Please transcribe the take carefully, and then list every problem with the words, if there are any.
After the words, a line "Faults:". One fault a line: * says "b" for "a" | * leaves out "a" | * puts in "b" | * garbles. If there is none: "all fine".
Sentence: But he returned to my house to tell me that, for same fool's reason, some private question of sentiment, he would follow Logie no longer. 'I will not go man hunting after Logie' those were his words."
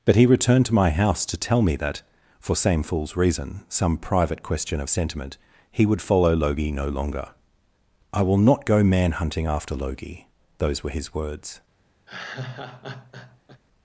But he returned to my house to tell me that, for same fool's reason, some private question of sentiment, he would follow Logie no longer. 'I will not go man hunting after Logie' those were his words."
Faults:
all fine